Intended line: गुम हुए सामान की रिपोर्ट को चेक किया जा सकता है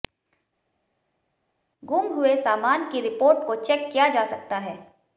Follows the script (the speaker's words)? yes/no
yes